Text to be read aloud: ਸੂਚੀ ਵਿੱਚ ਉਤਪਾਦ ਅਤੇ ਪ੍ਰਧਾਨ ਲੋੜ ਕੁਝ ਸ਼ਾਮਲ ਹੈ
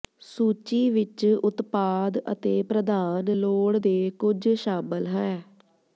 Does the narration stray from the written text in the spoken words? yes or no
yes